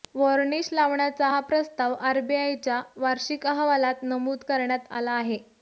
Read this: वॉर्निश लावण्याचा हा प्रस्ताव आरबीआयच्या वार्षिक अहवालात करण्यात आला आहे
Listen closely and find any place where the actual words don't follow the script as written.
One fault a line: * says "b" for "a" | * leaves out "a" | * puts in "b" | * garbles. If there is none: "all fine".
* puts in "नमूद"